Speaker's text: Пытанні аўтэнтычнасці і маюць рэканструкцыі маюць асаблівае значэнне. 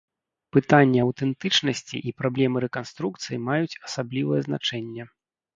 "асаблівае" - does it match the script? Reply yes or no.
yes